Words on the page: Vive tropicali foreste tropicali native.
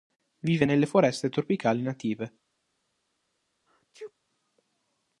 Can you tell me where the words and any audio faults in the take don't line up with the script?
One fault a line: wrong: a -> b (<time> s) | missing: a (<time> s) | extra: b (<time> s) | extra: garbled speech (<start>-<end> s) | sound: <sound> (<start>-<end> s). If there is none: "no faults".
wrong: tropicali -> nelle (0.6 s)
sound: sneeze (3.7-4.1 s)